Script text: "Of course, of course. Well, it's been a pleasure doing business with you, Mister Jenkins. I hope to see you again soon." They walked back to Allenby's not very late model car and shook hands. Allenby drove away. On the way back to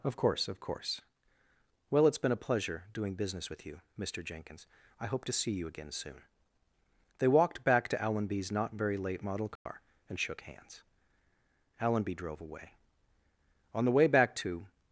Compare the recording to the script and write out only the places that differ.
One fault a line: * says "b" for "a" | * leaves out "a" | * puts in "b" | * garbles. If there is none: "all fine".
all fine